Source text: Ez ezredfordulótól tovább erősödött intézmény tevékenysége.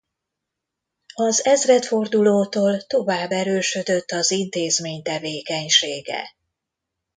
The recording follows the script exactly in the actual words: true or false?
false